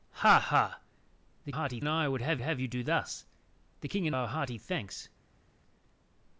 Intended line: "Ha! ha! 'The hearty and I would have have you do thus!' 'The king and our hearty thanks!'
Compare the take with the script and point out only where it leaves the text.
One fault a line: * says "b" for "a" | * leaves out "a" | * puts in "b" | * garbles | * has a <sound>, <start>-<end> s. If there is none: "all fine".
all fine